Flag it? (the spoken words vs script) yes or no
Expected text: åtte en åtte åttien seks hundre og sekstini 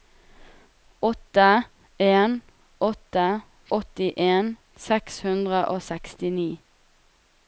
no